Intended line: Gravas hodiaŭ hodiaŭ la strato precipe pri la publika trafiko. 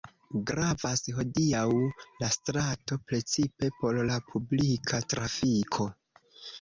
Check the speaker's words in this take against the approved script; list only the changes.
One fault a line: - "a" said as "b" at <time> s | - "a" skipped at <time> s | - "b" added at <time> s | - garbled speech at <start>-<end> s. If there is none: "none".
- "hodiaŭ" skipped at 1.6 s
- "pri" said as "por" at 3.8 s